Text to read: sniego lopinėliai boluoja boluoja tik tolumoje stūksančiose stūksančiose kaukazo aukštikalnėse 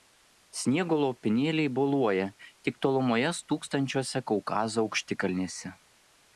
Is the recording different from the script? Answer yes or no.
yes